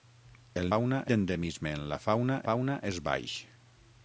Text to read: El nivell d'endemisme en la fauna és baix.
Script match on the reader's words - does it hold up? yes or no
no